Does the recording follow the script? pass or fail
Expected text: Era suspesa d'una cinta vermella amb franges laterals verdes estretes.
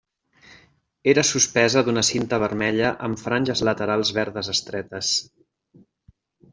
pass